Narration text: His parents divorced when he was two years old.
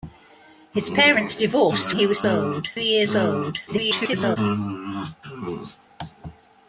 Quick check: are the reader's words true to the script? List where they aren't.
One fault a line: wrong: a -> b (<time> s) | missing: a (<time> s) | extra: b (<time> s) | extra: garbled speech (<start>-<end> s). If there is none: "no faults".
missing: when (1.9 s)
wrong: two -> old (2.2 s)
extra: garbled speech (3.7-4.4 s)